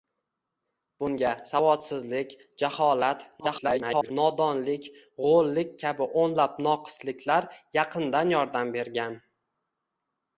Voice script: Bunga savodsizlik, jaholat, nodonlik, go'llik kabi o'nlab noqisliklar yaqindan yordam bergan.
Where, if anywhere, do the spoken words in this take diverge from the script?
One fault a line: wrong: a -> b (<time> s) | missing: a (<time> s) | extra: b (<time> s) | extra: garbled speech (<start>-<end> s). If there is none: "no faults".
extra: garbled speech (3.4-4.1 s)